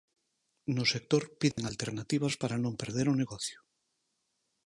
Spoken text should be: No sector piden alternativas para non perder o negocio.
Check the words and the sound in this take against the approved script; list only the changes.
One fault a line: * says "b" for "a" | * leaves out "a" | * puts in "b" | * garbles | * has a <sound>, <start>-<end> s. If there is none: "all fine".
* has a dropout, 1.5-1.6 s